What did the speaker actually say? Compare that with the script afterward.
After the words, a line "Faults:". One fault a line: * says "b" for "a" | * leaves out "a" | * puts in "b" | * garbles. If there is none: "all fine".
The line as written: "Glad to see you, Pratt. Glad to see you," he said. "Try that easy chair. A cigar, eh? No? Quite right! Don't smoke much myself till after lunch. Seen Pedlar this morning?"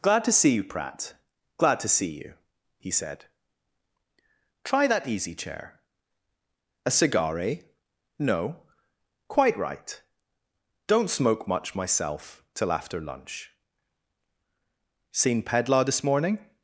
"Glad to see you, Pratt. Glad to see you," he said. "Try that easy chair. A cigar, eh? No? Quite right! Don't smoke much myself till after lunch. Seen Pedlar this morning?"
Faults:
all fine